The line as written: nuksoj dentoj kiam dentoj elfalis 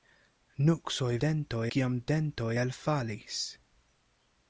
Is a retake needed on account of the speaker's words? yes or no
no